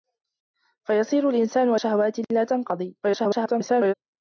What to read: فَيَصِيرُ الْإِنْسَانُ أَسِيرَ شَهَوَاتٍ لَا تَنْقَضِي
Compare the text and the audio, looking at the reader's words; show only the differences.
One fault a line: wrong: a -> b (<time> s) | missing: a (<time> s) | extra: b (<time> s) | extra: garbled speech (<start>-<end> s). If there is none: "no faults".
missing: أَسِيرَ (1.8 s)
extra: garbled speech (3.0-3.9 s)